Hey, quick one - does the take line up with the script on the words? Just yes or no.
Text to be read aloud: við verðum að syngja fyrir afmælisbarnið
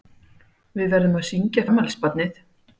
no